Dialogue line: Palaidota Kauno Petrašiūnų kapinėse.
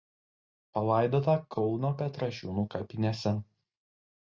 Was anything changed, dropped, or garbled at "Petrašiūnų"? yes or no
no